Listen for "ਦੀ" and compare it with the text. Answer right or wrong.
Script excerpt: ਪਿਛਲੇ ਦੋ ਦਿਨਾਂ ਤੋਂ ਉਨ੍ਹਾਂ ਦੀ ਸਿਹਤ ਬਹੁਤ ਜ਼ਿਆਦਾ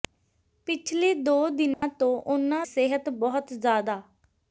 wrong